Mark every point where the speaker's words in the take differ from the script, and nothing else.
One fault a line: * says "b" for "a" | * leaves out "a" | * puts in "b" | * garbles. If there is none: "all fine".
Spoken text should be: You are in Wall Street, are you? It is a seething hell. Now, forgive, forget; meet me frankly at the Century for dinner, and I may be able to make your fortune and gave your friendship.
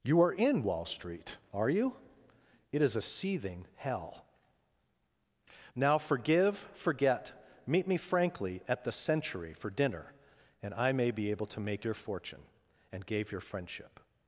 all fine